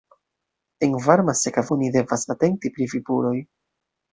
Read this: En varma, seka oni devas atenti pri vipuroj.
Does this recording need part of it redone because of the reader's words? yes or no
no